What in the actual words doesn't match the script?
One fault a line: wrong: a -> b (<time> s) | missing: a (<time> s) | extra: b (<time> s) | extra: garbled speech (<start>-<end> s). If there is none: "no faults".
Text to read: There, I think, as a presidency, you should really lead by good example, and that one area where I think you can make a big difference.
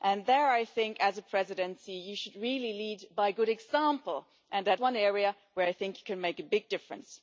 no faults